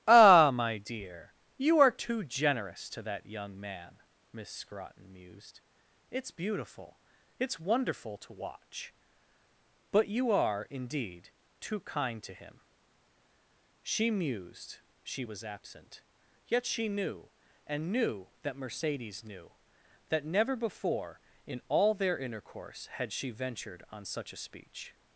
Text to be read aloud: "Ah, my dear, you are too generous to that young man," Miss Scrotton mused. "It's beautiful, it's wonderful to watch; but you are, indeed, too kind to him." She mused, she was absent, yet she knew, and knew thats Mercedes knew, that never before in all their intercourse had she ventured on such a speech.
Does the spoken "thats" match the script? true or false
false